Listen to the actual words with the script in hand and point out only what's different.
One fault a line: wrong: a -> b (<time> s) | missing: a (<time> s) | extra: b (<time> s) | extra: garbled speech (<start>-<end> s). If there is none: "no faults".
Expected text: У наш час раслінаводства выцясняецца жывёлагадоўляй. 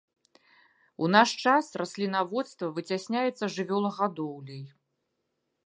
no faults